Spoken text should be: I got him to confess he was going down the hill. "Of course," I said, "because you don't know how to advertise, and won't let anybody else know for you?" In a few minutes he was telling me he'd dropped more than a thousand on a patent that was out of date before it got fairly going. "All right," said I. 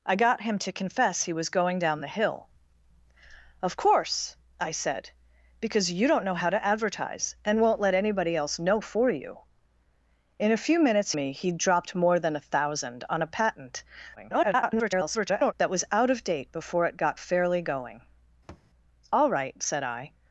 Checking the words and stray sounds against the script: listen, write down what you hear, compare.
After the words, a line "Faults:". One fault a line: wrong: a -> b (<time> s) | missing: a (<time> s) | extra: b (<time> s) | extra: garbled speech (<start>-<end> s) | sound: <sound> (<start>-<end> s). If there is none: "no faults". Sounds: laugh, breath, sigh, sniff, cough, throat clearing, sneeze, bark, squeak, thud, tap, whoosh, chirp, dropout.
I got him to confess he was going down the hill. "Of course," I said, "because you don't know how to advertise, and won't let anybody else know for you?" In a few minutes me he'd dropped more than a thousand on a patent [garbled] that was out of date before it got fairly going. "All right," said I.
Faults:
missing: he was telling (11.1 s)
extra: garbled speech (14.2-15.5 s)
sound: thud (18.5-18.7 s)